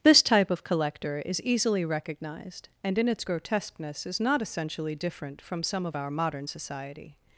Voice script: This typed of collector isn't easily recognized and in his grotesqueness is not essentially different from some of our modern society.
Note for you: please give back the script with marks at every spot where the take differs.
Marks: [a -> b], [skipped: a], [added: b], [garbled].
This [typed -> type] of collector [isn't -> is] easily recognized and in [his -> its] grotesqueness is not essentially different from some of our modern society.